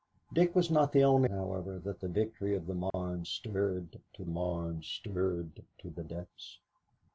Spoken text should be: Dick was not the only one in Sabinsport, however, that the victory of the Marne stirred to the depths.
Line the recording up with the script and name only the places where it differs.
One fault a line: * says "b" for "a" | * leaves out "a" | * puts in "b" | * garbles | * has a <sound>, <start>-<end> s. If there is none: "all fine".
* leaves out "one in Sabinsport"
* has a dropout, 2.9-2.9 s
* puts in "Marne stirred to"